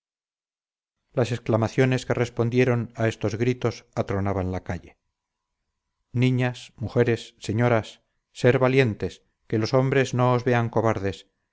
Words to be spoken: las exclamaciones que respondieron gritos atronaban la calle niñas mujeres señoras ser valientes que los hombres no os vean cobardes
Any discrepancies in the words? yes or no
yes